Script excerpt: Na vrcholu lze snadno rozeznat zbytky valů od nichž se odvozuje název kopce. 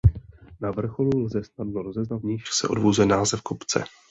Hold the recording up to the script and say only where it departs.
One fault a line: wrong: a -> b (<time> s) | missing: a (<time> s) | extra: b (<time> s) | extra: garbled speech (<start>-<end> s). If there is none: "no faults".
missing: zbytky valů od (2.2 s)